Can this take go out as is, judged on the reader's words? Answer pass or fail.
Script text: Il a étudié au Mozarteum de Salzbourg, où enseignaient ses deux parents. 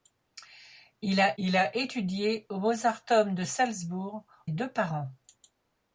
fail